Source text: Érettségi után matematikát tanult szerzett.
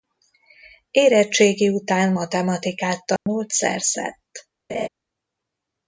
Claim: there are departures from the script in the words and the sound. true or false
true